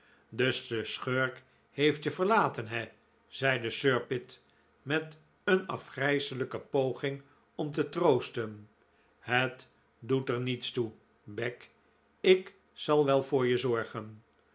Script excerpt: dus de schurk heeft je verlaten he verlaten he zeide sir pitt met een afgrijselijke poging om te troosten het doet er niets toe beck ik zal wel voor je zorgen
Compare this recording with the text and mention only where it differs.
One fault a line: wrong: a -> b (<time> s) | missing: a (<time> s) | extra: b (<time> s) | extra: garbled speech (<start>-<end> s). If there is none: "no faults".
missing: verlaten he (2.9 s)